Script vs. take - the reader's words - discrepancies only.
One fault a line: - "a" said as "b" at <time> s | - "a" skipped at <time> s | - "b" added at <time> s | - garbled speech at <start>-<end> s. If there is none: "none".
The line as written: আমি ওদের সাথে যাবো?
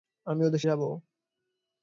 - "সাথে" skipped at 0.6 s